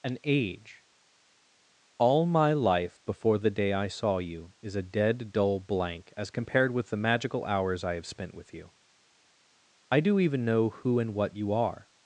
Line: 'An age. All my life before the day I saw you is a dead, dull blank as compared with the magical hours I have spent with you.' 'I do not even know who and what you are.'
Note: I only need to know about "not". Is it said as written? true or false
false